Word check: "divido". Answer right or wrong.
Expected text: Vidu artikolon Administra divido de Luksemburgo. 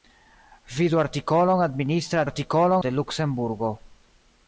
wrong